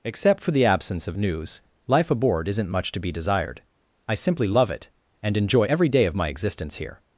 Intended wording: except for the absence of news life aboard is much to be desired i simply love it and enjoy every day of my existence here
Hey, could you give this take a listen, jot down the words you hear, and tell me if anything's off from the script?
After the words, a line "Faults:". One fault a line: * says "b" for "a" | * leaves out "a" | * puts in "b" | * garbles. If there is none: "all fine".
except for the absence of news life aboard isn't much to be desired i simply love it and enjoy every day of my existence here
Faults:
* says "isn't" for "is"